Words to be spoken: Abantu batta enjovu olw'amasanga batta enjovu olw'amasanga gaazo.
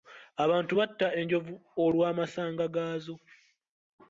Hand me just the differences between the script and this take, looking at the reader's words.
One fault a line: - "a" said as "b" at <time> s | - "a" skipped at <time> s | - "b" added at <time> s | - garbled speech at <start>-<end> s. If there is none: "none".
- "batta enjovu olw'amasanga" skipped at 2.6 s